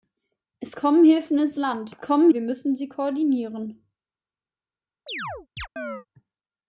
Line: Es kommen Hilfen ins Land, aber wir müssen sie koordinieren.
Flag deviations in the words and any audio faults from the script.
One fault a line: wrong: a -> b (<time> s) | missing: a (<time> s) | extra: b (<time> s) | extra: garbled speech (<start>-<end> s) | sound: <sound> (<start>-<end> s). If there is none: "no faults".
wrong: aber -> kommen (2.0 s)
sound: chirp (5.1-6.1 s)